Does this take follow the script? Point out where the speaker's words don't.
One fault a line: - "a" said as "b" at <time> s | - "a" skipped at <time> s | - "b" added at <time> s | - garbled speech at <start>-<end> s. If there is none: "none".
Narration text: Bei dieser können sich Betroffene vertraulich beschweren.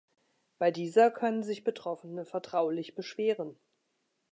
none